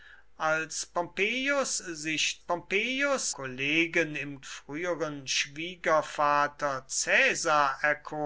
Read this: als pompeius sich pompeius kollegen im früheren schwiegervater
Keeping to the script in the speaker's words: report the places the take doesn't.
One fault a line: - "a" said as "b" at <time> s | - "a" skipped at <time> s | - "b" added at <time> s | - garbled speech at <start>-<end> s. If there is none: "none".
none